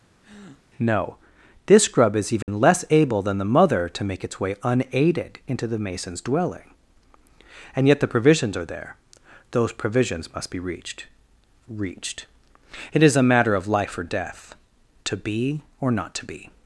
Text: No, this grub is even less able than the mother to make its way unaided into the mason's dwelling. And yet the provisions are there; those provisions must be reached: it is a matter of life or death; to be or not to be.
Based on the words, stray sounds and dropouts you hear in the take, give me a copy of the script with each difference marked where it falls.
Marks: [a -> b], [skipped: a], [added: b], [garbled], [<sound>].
[breath] No, this grub is even [dropout] less able than the mother to make its way unaided into the mason's dwelling. And yet the provisions are there; those provisions must be reached: [added: reached] it is a matter of life or death; to be or not to be.